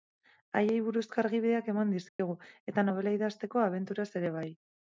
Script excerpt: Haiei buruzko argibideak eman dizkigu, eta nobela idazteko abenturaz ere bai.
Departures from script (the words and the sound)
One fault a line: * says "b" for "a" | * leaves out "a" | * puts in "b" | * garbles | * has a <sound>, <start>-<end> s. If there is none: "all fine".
* has a dropout, 2.1-2.2 s